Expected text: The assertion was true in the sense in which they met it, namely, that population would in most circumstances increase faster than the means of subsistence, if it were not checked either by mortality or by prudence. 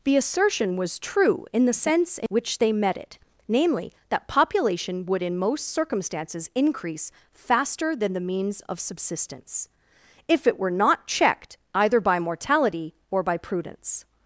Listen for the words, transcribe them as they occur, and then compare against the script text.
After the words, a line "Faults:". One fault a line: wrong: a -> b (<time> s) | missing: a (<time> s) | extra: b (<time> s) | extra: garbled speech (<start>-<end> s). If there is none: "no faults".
The assertion was true in the sense in which they met it, namely, that population would in most circumstances increase faster than the means of subsistence, if it were not checked either by mortality or by prudence.
Faults:
no faults